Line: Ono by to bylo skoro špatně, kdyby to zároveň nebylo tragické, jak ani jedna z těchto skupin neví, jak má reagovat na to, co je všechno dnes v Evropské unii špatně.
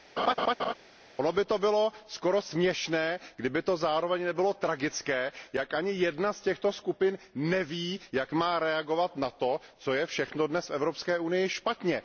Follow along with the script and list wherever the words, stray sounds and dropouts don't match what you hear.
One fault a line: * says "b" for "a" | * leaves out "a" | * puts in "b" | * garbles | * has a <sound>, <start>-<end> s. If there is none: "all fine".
* has a laugh, 0.2-0.7 s
* says "směšné" for "špatně"